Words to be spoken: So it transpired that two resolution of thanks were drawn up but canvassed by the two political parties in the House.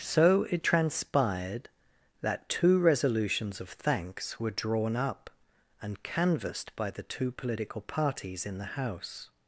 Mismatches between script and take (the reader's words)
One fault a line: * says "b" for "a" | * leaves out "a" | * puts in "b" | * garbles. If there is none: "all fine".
* says "resolutions" for "resolution"
* says "and" for "but"